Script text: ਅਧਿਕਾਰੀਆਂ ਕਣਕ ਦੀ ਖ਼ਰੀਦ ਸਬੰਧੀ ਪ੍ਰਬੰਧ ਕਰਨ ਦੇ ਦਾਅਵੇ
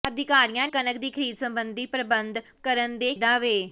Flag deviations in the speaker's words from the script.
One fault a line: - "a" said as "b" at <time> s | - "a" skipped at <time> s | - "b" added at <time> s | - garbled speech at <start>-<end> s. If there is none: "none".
none